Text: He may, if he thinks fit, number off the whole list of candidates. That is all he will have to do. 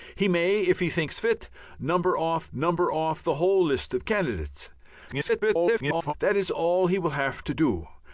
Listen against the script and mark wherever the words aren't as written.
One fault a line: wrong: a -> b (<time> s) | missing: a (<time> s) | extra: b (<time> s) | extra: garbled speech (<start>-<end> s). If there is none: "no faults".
extra: number off (2.5 s)
extra: garbled speech (5.1-6.1 s)